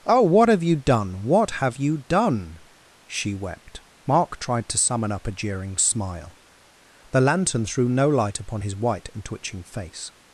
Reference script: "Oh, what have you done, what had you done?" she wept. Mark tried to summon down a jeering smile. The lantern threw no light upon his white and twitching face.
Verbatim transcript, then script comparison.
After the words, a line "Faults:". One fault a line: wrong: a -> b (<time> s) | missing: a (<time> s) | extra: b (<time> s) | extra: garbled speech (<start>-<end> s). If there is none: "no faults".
"Oh, what have you done, what have you done?" she wept. Mark tried to summon up a jeering smile. The lantern threw no light upon his white and twitching face.
Faults:
wrong: had -> have (1.5 s)
wrong: down -> up (5.1 s)